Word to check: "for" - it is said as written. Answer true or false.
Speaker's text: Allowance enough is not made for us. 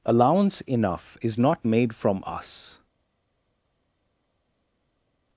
false